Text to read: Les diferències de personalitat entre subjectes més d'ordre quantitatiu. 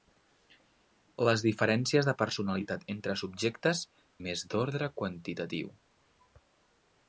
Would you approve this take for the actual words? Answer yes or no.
yes